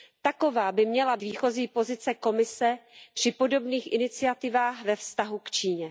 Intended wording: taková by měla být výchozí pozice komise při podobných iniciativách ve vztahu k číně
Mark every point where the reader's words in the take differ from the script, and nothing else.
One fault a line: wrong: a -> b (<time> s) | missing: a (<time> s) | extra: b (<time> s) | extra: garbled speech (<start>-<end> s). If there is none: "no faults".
missing: být (1.2 s)